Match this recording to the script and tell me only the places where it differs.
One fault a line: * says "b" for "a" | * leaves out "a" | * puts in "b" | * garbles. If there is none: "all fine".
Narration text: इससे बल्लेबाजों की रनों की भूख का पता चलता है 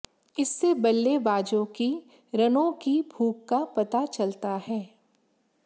all fine